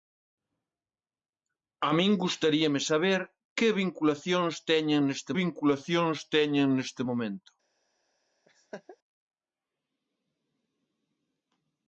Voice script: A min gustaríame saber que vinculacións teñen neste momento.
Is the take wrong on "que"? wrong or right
right